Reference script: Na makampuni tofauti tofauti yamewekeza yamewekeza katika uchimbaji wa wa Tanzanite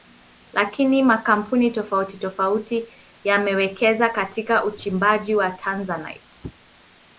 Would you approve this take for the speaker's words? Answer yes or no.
no